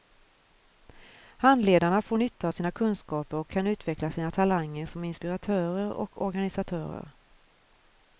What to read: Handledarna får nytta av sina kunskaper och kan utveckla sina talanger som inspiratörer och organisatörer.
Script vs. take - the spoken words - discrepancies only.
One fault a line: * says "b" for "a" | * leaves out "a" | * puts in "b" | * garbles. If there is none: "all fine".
all fine